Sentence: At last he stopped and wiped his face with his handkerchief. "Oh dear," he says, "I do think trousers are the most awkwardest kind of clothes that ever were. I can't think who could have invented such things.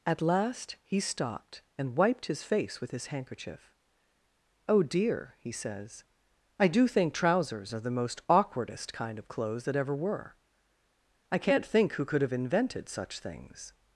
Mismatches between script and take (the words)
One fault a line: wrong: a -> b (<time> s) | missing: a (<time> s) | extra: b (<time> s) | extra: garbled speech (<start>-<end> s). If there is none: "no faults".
no faults